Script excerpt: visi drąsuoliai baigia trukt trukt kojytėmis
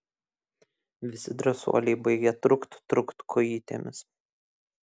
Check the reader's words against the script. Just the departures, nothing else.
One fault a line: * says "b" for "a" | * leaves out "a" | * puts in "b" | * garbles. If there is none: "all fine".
all fine